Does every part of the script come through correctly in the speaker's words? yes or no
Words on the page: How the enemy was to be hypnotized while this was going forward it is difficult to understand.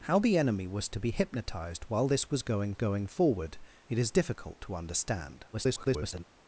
no